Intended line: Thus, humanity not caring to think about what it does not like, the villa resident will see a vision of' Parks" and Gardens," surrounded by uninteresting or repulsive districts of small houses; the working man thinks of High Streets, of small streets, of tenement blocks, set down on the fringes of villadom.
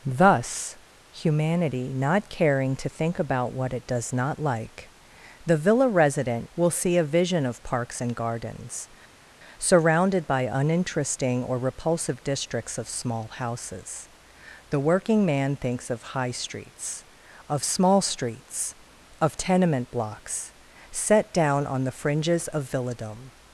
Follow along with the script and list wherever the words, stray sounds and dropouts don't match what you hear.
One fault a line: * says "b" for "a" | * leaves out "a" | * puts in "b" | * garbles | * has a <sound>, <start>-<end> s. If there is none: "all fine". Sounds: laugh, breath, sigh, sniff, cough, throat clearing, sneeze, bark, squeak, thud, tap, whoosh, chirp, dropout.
all fine